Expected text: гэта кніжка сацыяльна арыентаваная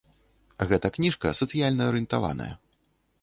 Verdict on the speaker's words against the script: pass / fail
pass